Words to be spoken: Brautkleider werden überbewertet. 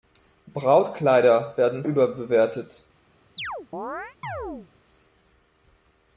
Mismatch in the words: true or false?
false